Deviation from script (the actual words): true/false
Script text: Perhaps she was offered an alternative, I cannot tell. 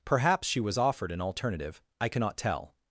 false